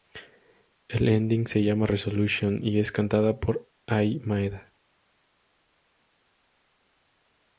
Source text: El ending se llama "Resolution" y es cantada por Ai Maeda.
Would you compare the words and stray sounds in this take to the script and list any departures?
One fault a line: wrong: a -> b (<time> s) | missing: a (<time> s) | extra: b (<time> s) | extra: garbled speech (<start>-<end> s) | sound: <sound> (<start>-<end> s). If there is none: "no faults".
no faults